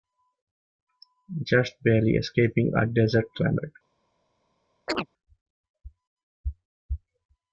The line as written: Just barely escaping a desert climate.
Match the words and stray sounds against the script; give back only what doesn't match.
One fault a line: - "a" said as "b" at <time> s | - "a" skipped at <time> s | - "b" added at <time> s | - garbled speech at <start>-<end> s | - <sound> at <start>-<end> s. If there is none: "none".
- chirp at 4.9-5.1 s